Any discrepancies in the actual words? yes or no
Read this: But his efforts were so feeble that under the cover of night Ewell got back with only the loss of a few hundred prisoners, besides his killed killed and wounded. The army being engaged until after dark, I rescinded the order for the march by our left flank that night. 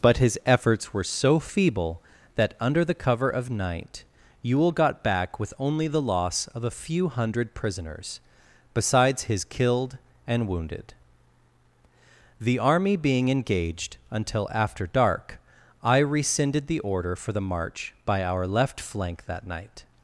yes